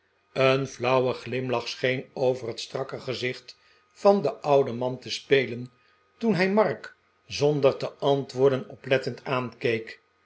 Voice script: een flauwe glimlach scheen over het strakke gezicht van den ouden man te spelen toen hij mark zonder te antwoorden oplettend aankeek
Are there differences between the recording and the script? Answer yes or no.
no